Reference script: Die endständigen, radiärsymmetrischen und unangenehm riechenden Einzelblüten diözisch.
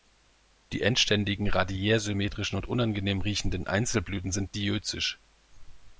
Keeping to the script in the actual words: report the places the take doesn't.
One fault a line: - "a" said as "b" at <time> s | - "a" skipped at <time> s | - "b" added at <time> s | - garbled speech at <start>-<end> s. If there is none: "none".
- "sind" added at 4.3 s